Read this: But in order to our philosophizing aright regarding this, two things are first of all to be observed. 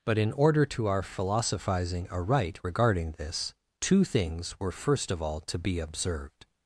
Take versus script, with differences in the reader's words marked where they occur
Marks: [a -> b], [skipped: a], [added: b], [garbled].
But in order to our philosophizing aright regarding this, two things [are -> were] first of all to be observed.